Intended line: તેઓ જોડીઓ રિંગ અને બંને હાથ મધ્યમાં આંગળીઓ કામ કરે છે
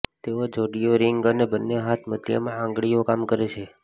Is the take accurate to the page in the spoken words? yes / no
yes